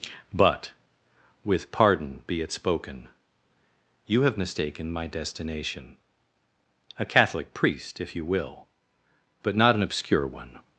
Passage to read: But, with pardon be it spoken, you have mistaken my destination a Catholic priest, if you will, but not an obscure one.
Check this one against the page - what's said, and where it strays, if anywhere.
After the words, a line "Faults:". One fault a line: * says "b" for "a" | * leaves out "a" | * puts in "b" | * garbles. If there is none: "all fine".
But, with pardon be it spoken, you have mistaken my destination a Catholic priest, if you will, but not an obscure one.
Faults:
all fine